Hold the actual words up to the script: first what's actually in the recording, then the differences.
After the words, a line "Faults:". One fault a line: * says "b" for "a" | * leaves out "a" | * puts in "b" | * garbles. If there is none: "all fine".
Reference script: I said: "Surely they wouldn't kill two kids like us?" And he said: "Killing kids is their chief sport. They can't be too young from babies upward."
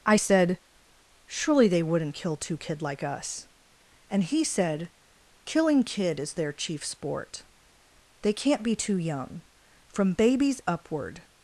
I said: "Surely they wouldn't kill two kid like us?" And he said: "Killing kid is their chief sport. They can't be too young from babies upward."
Faults:
* says "kid" for "kids"
* says "kid" for "kids"